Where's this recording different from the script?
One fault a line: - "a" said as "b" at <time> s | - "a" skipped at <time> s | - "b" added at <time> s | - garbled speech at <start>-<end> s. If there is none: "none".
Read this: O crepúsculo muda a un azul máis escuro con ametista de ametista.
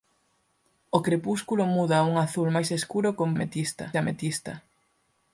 none